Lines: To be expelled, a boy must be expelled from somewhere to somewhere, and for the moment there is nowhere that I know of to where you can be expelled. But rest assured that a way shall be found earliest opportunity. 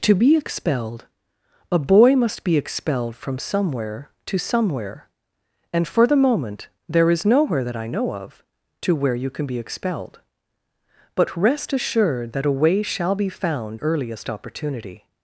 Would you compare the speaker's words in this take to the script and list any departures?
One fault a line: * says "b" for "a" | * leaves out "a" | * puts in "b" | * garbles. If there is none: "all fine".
all fine